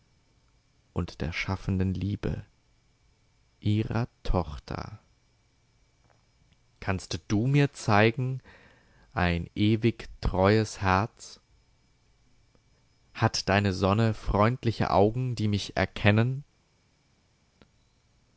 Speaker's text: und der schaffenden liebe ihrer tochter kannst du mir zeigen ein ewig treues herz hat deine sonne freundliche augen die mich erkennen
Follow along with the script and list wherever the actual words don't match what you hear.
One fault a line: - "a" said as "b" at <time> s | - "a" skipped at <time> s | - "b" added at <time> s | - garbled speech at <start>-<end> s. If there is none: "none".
none